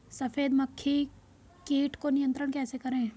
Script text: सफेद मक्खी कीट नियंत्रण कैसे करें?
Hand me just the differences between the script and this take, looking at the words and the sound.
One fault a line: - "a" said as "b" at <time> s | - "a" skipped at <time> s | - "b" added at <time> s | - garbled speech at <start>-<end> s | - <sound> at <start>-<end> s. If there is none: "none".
- "को" added at 2.0 s